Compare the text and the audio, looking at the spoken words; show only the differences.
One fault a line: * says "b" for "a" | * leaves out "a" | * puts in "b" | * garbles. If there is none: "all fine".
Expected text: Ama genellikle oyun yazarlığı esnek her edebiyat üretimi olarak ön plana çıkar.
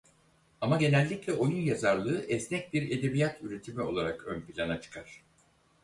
* says "bir" for "her"